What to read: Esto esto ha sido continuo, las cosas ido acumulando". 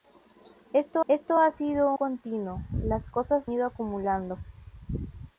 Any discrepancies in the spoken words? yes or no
no